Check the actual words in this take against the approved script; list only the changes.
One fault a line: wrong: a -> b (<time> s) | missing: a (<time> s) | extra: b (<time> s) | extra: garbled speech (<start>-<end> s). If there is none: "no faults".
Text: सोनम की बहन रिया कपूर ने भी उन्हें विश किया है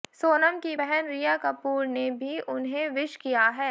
no faults